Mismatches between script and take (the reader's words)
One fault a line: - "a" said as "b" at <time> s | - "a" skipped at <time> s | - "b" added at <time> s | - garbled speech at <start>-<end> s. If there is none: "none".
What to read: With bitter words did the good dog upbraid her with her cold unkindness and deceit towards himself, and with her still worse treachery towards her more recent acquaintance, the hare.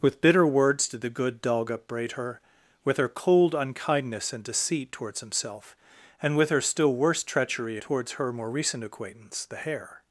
none